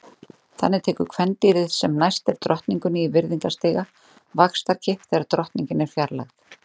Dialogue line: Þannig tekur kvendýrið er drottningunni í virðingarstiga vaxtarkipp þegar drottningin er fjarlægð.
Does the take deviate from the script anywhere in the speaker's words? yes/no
yes